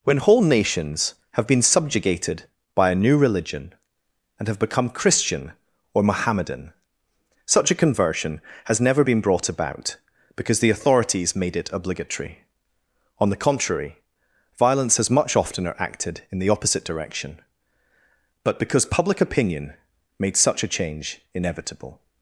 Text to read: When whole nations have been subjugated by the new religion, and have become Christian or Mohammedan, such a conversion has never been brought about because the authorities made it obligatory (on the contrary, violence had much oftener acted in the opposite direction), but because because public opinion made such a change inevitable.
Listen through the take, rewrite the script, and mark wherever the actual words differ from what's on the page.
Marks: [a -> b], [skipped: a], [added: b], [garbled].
When whole nations have been subjugated by [the -> a] new religion, and have become Christian or Mohammedan, such a conversion has never been brought about because the authorities made it obligatory (on the contrary, violence [had -> has] much oftener acted in the opposite direction), but because [skipped: because] public opinion made such a change inevitable.